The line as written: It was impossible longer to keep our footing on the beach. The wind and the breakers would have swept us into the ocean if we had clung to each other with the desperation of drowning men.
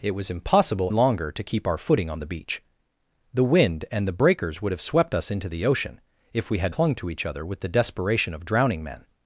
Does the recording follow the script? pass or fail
pass